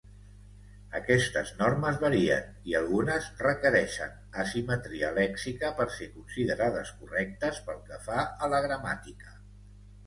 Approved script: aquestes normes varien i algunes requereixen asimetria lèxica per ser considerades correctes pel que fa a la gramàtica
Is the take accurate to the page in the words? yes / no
yes